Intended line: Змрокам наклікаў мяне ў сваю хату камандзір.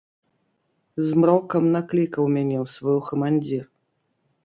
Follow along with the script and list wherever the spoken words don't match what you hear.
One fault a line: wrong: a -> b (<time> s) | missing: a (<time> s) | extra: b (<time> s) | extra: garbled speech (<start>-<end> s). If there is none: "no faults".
missing: хату (3.0 s)